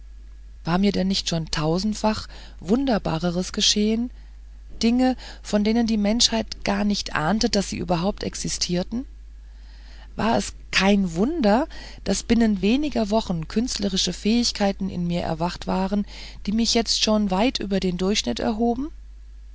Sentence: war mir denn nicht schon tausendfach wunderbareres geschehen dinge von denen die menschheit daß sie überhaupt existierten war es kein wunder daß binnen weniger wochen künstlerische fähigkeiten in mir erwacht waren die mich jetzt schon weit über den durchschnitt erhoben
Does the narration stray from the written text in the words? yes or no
yes